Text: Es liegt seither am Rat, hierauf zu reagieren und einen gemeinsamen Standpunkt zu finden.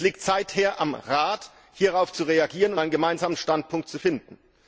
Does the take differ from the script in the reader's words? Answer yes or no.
no